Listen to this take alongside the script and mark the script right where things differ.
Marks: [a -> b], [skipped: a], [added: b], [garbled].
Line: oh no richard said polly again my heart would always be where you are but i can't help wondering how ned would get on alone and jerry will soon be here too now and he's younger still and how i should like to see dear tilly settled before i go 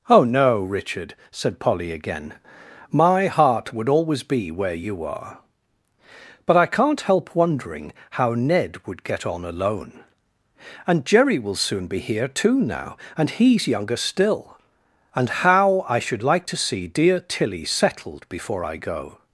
oh no richard said polly again my heart would always be where you are but i can't help wondering how ned would get on alone and jerry will soon be here too now and he's younger still and how i should like to see dear tilly settled before i go